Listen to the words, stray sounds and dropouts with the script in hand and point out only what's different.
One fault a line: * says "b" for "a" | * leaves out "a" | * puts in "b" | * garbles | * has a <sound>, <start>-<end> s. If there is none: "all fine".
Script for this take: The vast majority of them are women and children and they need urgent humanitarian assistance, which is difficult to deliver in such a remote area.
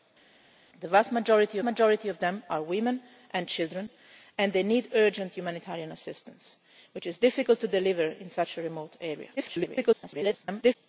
* puts in "majority"
* garbles